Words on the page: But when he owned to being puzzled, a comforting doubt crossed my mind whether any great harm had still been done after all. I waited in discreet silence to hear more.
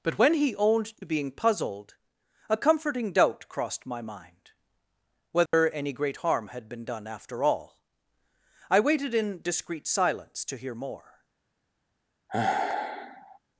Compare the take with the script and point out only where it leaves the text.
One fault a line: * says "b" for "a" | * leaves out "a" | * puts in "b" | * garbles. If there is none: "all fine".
* leaves out "still"